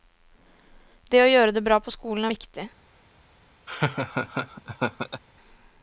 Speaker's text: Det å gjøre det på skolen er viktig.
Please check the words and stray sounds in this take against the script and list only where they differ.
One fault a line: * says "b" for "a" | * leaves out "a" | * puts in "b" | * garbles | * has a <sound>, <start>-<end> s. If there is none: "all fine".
* puts in "bra"
* has a laugh, 3.7-5.2 s